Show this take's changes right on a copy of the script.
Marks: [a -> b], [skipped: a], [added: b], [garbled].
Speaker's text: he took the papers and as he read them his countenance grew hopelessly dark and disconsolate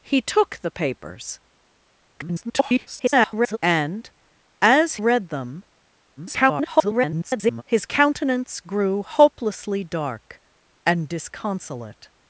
he took the papers [garbled] and as [skipped: he] read them [garbled] his countenance grew hopelessly dark and disconsolate